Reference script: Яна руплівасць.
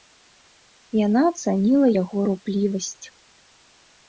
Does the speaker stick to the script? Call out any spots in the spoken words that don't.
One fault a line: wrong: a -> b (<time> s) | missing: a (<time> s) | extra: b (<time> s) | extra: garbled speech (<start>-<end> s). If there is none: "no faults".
extra: ацаніла яго (1.3 s)